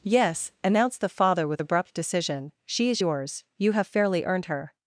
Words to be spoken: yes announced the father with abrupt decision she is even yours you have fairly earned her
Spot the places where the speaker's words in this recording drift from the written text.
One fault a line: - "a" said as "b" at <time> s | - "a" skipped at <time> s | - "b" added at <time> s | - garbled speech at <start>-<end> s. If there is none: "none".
- "even" skipped at 3.0 s